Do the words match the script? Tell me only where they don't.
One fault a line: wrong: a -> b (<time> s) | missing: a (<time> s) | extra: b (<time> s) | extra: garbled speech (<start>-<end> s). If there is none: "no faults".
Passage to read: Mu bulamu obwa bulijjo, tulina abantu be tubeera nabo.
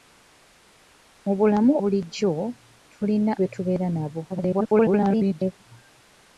missing: obwa (1.7 s)
missing: abantu (3.3 s)
extra: garbled speech (4.3-5.5 s)